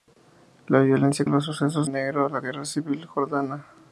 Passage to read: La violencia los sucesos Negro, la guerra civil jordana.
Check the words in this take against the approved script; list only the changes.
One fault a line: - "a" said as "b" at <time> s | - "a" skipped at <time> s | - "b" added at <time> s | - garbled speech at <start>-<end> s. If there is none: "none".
none